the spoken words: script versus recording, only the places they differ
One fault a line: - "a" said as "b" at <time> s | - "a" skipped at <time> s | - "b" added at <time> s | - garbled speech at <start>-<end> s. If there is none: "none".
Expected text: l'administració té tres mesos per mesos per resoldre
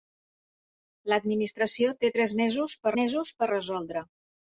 none